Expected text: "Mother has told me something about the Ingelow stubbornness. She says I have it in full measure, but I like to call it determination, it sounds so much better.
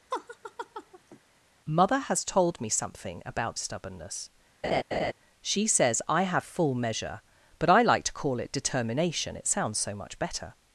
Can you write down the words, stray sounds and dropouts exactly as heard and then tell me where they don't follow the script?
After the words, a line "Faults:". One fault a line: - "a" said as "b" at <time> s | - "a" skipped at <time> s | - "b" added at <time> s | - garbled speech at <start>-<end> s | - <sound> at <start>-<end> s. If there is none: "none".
"Mother has told me something about stubbornness. She says I have full measure, but I like to call it determination, it sounds so much better.
Faults:
- laugh at 0.1-1.2 s
- "the Ingelow" skipped at 3.6 s
- laugh at 4.6-5.1 s
- "it in" skipped at 6.5 s